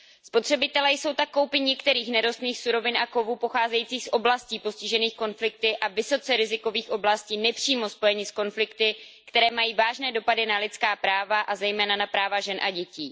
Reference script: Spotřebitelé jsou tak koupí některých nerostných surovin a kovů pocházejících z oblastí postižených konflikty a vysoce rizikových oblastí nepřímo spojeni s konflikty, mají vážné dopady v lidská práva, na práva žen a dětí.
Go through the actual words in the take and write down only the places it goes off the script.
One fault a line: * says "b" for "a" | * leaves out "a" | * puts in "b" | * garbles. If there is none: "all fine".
* puts in "které"
* says "na" for "v"
* puts in "a zejména"